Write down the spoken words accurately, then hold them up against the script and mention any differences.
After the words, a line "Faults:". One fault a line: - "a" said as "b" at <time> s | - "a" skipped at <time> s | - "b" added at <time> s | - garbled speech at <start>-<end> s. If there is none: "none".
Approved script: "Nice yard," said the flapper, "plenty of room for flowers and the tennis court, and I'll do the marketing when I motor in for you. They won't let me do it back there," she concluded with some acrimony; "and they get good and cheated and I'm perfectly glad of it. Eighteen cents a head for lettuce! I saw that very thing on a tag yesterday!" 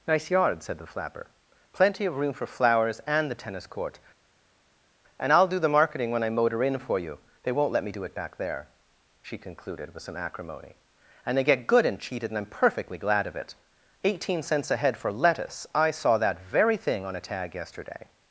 "Nice yard," said the flapper, "plenty of room for flowers and the tennis court, and I'll do the marketing when I motor in for you. They won't let me do it back there," she concluded with some acrimony; "and they get good and cheated and I'm perfectly glad of it. Eighteen cents a head for lettuce! I saw that very thing on a tag yesterday!"
Faults:
none